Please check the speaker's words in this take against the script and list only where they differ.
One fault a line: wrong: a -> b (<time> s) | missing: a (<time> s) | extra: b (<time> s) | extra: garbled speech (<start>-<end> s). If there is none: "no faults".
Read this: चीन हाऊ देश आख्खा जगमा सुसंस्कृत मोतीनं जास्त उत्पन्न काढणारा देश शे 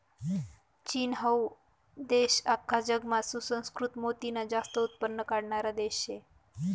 no faults